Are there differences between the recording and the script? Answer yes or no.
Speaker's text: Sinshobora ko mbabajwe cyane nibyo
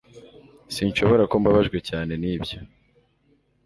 no